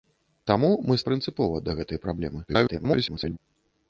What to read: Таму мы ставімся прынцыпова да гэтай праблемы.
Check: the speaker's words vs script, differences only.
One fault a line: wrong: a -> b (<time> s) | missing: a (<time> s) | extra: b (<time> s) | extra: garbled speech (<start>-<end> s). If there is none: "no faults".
missing: ставімся (1.0 s)
extra: garbled speech (2.5-3.4 s)